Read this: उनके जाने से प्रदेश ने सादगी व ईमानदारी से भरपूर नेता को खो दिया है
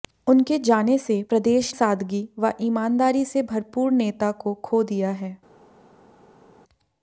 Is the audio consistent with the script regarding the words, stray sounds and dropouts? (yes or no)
no